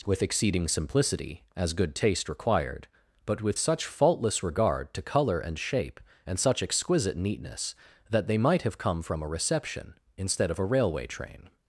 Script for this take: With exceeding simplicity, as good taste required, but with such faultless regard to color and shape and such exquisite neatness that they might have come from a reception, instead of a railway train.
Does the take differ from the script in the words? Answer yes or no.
no